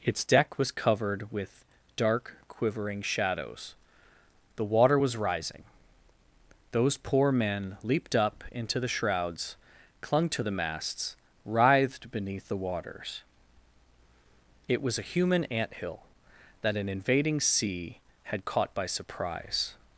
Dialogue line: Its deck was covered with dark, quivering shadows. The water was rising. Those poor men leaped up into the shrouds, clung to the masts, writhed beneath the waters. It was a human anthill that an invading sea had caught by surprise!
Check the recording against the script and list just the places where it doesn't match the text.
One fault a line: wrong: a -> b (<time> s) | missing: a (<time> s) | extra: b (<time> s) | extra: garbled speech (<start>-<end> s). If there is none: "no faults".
no faults